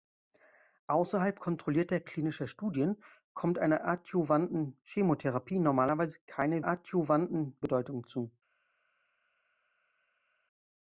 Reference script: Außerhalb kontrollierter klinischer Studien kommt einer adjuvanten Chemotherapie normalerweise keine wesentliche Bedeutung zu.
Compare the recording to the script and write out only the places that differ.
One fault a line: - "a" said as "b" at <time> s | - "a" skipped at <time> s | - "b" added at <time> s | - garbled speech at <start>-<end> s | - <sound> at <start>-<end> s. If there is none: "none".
- "wesentliche" said as "adjuvanten" at 6.6 s